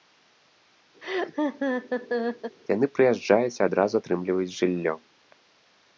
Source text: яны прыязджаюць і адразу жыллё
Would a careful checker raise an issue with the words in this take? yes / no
yes